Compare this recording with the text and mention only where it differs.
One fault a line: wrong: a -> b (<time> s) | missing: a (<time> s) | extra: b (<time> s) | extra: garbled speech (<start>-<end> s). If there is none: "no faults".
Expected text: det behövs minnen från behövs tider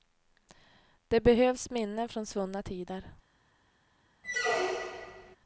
wrong: behövs -> svunna (2.2 s)